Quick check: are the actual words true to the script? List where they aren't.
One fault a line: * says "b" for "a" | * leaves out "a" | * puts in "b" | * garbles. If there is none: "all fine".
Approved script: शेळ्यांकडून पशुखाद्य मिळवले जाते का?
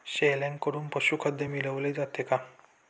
all fine